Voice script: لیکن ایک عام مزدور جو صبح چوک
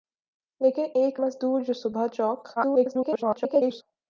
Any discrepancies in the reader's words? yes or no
yes